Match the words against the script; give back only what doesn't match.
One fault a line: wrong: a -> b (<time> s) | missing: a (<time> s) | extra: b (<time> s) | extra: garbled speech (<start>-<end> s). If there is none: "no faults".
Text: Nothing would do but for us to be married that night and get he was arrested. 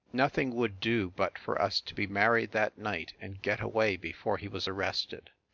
extra: away before (3.6 s)